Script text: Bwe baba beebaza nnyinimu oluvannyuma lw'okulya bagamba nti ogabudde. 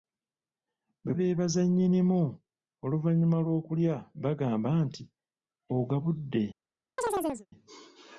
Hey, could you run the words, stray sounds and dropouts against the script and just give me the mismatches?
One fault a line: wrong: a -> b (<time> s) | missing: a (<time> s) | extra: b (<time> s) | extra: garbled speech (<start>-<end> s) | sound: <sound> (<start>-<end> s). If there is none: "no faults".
missing: baba (1.1 s)
sound: chirp (7.0-7.5 s)